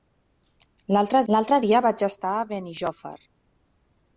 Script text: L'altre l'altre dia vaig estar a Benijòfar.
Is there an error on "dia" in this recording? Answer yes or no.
no